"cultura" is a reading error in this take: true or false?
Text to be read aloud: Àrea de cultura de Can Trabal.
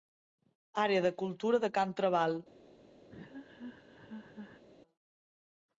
false